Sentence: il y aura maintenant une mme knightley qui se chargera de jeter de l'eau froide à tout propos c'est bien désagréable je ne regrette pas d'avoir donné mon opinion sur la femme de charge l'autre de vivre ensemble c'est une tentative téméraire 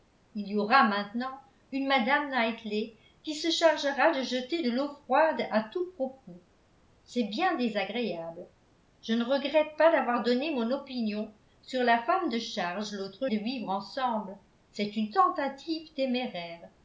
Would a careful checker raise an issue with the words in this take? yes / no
no